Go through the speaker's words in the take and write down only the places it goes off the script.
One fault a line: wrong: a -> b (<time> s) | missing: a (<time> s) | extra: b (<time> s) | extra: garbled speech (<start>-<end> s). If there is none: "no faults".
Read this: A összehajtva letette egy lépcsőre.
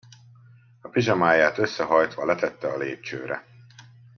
extra: pizsamáját (0.9 s)
wrong: egy -> a (2.7 s)